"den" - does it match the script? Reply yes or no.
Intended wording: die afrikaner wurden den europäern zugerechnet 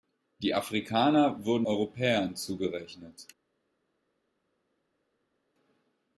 no